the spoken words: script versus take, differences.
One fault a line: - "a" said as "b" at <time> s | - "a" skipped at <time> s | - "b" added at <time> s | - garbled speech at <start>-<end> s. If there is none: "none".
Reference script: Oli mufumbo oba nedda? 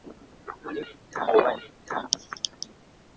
- "mufumbo" said as "nedda" at 0.8 s